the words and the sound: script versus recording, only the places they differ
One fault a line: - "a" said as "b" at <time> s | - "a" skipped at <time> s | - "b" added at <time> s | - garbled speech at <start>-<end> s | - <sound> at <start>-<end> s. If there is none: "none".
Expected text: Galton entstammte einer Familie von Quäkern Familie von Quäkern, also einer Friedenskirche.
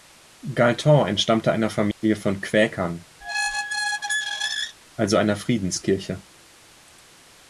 - dropout at 1.9-2.0 s
- "Familie von Quäkern" skipped at 3.0 s
- squeak at 3.2-4.8 s